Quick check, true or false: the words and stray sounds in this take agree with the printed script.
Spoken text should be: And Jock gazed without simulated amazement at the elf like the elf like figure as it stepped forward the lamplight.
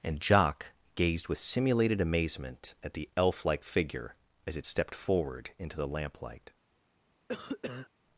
false